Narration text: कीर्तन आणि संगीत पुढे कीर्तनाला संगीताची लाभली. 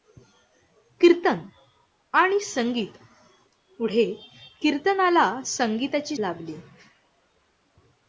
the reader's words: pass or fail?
pass